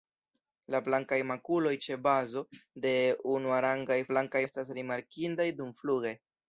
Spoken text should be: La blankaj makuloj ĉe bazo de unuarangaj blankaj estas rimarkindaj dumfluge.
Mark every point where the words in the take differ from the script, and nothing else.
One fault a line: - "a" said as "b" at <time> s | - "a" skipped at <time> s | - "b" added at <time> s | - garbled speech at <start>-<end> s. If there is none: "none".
none